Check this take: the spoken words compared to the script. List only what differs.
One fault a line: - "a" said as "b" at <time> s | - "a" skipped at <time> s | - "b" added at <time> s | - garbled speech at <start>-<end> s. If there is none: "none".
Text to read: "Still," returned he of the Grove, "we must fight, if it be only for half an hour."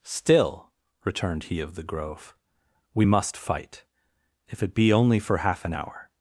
none